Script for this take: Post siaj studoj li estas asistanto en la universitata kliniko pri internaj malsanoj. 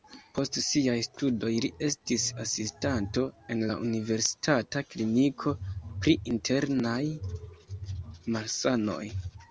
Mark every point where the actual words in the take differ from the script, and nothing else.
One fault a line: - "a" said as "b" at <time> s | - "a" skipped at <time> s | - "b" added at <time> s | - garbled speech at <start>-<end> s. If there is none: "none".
- "estas" said as "estis" at 1.9 s